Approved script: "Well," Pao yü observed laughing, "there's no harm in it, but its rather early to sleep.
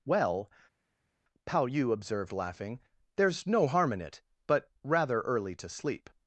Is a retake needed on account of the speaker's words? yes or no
yes